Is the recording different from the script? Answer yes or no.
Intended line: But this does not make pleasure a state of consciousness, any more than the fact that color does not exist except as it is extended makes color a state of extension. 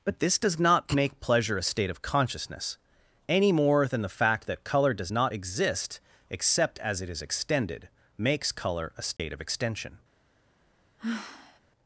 no